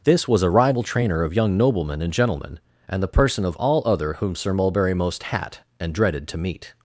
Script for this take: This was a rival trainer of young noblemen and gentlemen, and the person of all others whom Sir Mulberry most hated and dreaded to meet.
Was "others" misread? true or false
true